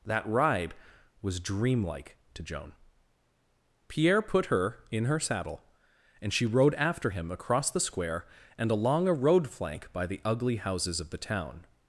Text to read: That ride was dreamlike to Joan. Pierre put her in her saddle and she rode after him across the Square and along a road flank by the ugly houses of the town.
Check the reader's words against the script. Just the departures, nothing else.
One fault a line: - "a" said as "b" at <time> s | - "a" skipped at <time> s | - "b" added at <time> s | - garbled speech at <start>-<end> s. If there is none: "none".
none